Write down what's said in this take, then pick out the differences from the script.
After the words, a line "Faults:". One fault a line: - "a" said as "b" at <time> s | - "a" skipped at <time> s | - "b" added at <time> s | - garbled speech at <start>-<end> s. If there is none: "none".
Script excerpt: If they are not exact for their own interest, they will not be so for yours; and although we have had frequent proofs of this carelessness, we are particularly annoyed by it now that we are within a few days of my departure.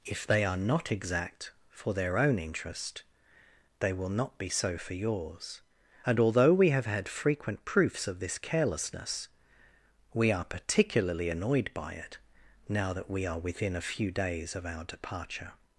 If they are not exact for their own interest, they will not be so for yours; and although we have had frequent proofs of this carelessness, we are particularly annoyed by it now that we are within a few days of our departure.
Faults:
- "my" said as "our" at 14.6 s